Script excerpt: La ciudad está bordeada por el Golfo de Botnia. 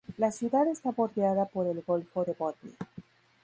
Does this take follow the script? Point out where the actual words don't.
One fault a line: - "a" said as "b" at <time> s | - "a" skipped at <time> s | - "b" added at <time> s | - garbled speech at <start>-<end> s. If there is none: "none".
none